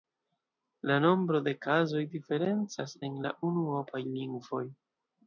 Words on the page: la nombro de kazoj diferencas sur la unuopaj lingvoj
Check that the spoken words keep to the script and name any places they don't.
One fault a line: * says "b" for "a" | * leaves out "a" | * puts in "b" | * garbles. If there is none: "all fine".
* says "en" for "sur"